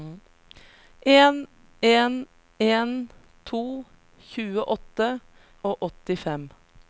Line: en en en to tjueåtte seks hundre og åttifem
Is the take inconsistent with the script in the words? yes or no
yes